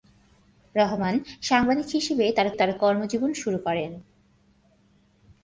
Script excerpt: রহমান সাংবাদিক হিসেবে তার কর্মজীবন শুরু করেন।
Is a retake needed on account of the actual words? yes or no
yes